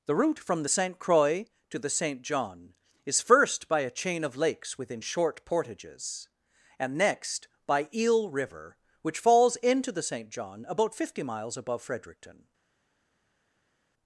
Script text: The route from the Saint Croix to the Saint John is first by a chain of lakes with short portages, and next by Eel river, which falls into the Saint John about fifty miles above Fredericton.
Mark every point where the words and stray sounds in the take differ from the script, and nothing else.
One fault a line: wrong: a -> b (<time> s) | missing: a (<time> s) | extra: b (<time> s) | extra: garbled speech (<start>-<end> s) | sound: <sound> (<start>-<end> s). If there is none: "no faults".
wrong: with -> within (4.8 s)